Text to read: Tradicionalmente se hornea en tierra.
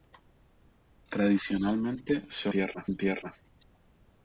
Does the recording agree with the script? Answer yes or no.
no